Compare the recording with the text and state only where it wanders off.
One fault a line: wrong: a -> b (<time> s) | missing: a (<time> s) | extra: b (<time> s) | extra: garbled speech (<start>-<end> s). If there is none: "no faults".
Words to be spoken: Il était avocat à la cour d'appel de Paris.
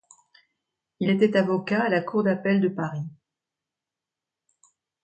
no faults